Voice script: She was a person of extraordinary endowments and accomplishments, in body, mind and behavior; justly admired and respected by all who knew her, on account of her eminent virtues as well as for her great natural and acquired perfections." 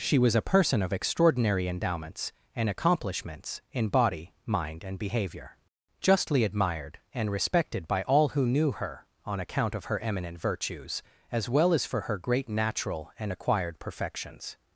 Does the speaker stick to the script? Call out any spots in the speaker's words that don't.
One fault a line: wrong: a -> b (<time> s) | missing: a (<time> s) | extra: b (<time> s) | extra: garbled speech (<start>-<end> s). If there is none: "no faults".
no faults